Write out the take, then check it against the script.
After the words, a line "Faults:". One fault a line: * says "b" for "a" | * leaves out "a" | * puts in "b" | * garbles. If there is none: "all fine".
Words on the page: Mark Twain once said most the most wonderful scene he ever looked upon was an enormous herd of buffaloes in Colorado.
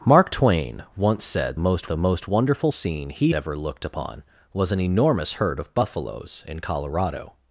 Mark Twain once said most the most wonderful scene he ever looked upon was an enormous herd of buffaloes in Colorado.
Faults:
all fine